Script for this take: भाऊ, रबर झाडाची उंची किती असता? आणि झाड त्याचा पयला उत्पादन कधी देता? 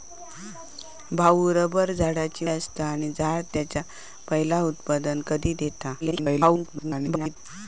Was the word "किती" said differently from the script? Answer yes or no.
yes